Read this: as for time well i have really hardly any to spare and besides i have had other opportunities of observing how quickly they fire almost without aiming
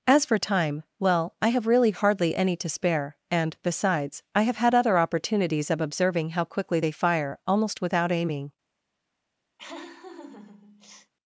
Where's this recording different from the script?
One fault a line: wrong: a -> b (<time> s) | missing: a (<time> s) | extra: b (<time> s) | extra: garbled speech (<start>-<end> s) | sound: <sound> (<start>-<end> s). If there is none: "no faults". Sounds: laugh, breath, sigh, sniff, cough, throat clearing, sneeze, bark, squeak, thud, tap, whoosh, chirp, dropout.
sound: laugh (9.6-11.1 s)